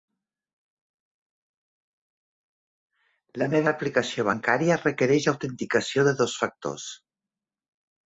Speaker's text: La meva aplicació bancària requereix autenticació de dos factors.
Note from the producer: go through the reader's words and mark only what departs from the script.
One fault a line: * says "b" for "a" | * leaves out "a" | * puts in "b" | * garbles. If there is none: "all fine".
all fine